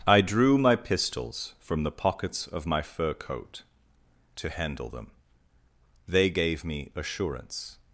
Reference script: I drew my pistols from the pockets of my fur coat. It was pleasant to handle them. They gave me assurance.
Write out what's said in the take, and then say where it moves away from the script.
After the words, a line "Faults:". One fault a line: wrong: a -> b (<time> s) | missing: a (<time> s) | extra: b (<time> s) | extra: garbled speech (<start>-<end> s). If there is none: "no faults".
I drew my pistols from the pockets of my fur coat. To handle them. They gave me assurance.
Faults:
missing: It was pleasant (3.6 s)